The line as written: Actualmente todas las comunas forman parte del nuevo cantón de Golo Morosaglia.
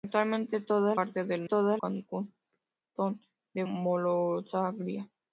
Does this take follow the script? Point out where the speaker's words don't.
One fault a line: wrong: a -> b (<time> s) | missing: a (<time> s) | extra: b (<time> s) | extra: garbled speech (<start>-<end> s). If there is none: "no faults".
missing: las comunas forman (1.0 s)
wrong: nuevo -> todas (1.4 s)
missing: Golo (3.6 s)